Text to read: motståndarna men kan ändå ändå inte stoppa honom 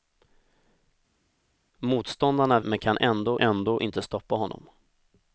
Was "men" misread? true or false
false